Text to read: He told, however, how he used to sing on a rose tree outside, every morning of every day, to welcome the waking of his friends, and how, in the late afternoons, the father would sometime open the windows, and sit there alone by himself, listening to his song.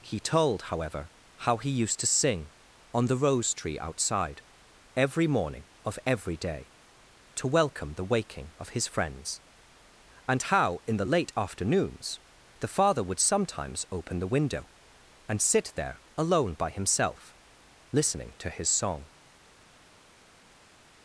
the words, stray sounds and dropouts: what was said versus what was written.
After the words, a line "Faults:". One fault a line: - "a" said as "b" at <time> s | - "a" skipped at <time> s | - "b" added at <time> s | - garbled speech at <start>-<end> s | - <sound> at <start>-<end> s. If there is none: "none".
He told, however, how he used to sing on the rose tree outside, every morning of every day, to welcome the waking of his friends, and how, in the late afternoons, the father would sometimes open the window, and sit there alone by himself, listening to his song.
Faults:
- "a" said as "the" at 3.1 s
- "sometime" said as "sometimes" at 13.2 s
- "windows" said as "window" at 14.3 s